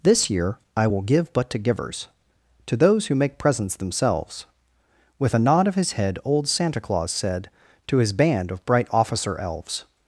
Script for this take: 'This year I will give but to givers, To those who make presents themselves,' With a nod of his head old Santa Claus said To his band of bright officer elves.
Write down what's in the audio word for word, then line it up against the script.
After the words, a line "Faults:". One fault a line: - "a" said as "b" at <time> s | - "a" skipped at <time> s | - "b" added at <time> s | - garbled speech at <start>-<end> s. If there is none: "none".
'This year I will give but to givers, To those who make presents themselves,' With a nod of his head old Santa Claus said To his band of bright officer elves.
Faults:
none